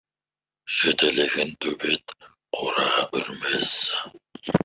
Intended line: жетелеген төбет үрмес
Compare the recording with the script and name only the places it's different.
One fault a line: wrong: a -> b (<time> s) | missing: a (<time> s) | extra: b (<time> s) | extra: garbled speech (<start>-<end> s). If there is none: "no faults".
extra: қораға (2.6 s)